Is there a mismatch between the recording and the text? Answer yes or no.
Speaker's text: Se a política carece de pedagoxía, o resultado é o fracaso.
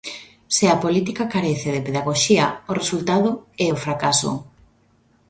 no